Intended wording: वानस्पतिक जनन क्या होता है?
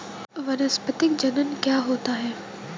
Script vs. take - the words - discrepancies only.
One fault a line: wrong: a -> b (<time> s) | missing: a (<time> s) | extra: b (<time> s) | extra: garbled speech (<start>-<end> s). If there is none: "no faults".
no faults